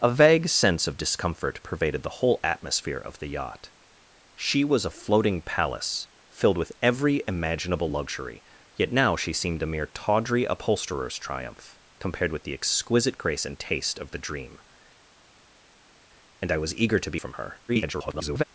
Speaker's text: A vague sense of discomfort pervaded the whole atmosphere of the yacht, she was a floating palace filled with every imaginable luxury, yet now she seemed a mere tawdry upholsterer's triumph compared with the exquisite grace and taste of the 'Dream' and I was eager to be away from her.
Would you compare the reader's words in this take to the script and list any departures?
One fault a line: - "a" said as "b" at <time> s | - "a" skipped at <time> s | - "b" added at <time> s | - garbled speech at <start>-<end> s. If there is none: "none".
- "away" skipped at 17.2 s
- garbled speech at 17.7-18.4 s